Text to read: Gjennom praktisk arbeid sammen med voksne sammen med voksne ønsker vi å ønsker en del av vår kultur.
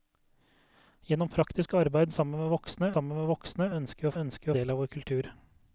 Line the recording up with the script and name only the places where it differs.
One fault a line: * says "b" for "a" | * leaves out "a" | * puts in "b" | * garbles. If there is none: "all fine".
all fine